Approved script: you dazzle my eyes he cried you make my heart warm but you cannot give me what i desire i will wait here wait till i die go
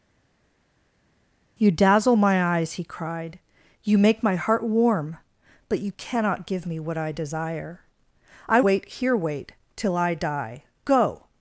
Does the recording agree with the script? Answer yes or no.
no